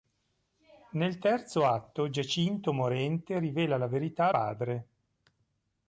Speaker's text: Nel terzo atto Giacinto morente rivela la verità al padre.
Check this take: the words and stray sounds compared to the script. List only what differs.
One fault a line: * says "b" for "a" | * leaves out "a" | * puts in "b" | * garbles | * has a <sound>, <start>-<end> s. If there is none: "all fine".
* leaves out "al"